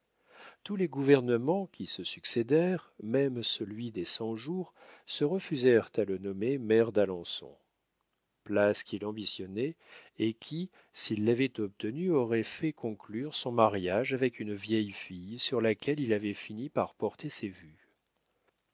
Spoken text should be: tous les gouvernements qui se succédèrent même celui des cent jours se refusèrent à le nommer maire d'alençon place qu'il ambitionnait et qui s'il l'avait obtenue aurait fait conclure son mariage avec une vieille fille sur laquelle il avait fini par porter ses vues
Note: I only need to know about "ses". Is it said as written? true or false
true